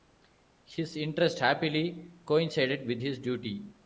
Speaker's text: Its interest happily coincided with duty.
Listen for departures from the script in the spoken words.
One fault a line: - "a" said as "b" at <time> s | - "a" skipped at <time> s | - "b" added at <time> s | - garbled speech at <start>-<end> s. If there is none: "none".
- "Its" said as "His" at 0.6 s
- "his" added at 3.0 s